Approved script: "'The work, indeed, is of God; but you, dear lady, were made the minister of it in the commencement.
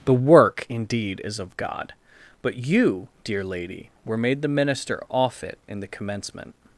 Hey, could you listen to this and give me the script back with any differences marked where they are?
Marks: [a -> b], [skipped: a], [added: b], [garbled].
"'The work, indeed, is of God; but you, dear lady, were made the minister [of -> off] it in the commencement.